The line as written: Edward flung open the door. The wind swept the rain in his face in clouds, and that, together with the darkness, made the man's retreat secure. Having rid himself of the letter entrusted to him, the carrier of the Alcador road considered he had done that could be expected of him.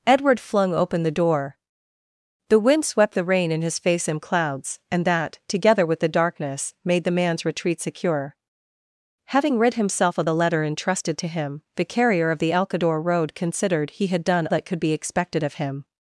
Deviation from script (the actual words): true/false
false